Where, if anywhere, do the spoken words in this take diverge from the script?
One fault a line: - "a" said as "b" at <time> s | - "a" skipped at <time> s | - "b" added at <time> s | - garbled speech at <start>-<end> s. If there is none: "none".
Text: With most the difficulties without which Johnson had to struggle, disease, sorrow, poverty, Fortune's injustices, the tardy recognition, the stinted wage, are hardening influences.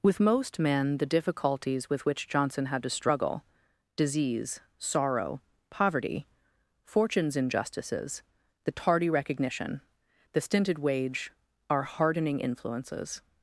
- "men" added at 0.6 s
- "without" said as "with" at 1.9 s